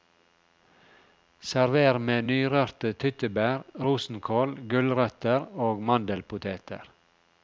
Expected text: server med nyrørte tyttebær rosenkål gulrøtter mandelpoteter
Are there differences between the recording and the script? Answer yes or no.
yes